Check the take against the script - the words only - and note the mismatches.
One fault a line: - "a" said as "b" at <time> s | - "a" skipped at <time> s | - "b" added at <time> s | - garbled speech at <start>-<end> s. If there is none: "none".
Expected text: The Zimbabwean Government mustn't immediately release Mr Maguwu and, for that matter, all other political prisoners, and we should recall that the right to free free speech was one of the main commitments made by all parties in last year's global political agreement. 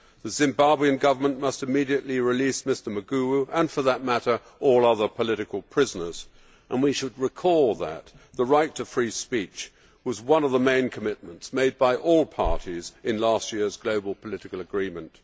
- "mustn't" said as "must" at 1.4 s
- "free" skipped at 9.1 s